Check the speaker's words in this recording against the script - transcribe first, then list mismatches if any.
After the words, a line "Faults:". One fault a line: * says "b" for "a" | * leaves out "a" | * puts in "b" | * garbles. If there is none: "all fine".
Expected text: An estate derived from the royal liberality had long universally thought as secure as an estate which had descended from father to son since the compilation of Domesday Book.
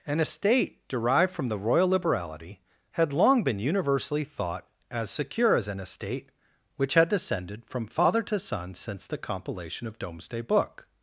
An estate derived from the royal liberality had long been universally thought as secure as an estate which had descended from father to son since the compilation of Domesday Book.
Faults:
* puts in "been"